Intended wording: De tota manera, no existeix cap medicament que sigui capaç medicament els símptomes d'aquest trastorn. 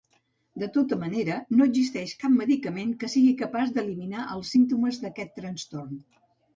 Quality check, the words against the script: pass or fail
fail